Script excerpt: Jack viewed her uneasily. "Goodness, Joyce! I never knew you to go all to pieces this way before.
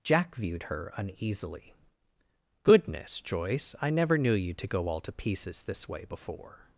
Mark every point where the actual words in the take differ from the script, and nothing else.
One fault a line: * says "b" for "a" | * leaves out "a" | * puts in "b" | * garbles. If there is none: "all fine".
all fine